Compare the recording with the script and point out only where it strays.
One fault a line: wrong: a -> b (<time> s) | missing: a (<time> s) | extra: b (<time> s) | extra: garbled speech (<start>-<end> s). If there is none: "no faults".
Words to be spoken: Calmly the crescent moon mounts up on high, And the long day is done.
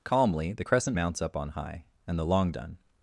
missing: moon (1.0 s)
missing: day is (2.5 s)